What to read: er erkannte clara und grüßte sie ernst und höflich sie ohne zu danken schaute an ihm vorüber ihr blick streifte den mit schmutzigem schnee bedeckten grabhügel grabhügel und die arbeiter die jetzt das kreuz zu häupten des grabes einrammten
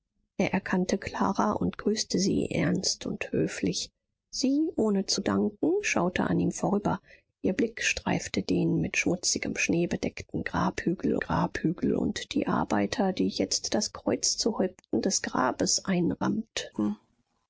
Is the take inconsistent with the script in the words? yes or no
no